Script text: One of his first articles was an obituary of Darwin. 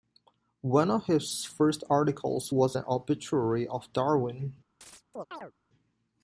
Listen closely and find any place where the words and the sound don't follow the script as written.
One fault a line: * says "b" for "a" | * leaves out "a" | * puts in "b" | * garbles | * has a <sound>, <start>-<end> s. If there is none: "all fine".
* has a chirp, 4.8-5.5 s